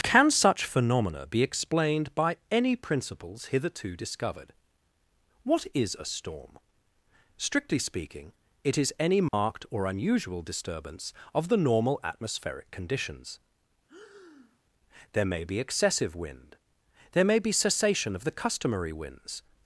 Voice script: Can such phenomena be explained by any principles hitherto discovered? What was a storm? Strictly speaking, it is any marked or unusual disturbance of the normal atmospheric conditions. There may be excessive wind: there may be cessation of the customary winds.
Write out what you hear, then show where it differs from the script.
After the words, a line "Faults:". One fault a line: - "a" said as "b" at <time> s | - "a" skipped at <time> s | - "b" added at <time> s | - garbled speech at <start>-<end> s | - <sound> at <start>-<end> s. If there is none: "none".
Can such phenomena be explained by any principles hitherto discovered? What is a storm? Strictly speaking, it is any marked or unusual disturbance of the normal atmospheric conditions. There may be excessive wind: there may be cessation of the customary winds.
Faults:
- "was" said as "is" at 5.7 s
- dropout at 9.3-9.3 s
- breath at 13.9-14.6 s